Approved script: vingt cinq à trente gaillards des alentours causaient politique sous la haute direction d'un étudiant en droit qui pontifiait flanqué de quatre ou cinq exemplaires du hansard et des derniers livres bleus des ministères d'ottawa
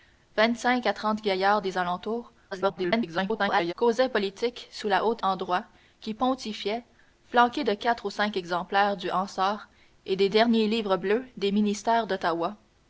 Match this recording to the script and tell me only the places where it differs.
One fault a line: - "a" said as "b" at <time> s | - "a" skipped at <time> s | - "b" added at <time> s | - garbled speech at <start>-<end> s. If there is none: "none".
- garbled speech at 2.5-3.7 s
- "direction d'un étudiant" skipped at 5.2 s